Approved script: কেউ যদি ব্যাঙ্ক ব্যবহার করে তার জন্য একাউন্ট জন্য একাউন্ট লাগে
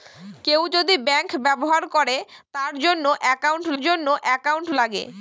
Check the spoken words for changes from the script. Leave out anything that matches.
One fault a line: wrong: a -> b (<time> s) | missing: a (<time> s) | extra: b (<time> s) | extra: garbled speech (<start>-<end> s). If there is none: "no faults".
no faults